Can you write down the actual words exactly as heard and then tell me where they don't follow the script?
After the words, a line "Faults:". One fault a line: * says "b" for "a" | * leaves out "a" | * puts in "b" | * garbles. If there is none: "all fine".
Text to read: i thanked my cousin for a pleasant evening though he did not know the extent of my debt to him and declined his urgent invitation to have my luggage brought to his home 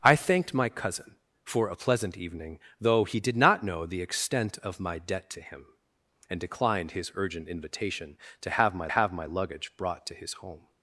i thanked my cousin for a pleasant evening though he did not know the extent of my debt to him and declined his urgent invitation to have my have my luggage brought to his home
Faults:
* puts in "have my"